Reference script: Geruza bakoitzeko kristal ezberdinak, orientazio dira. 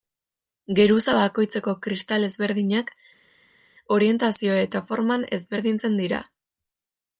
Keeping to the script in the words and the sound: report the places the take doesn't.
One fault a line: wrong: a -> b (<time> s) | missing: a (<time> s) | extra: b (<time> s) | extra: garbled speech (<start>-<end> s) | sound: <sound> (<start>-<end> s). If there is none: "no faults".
extra: eta forman ezberdintzen (4.6 s)